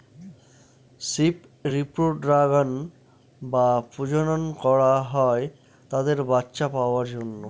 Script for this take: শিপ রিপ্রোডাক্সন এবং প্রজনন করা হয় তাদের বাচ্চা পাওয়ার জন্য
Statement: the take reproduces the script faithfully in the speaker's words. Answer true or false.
false